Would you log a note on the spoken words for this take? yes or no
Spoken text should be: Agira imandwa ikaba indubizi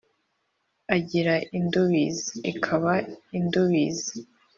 yes